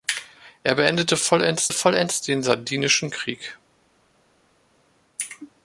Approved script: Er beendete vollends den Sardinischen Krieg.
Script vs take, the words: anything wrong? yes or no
yes